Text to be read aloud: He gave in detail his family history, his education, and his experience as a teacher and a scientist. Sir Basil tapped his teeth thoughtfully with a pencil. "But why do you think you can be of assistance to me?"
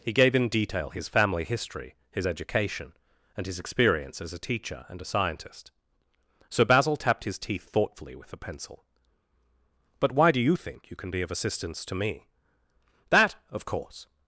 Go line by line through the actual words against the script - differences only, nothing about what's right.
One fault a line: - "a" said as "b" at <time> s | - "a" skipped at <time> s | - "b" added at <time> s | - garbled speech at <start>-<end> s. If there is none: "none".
- "That of course" added at 13.1 s